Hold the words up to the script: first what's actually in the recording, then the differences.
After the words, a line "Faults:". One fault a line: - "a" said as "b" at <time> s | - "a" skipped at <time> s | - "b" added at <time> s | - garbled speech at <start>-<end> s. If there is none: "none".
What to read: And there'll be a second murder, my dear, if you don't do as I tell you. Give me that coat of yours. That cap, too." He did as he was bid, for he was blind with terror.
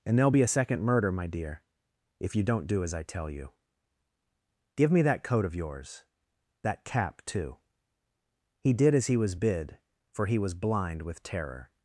And there'll be a second murder, my dear, if you don't do as I tell you. Give me that coat of yours. That cap, too." He did as he was bid, for he was blind with terror.
Faults:
none